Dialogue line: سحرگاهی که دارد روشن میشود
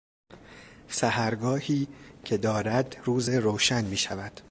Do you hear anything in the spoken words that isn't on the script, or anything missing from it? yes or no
yes